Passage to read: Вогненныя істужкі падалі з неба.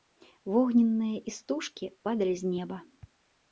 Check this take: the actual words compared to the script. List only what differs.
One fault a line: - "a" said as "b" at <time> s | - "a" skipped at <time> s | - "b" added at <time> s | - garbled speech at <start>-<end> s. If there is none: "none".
none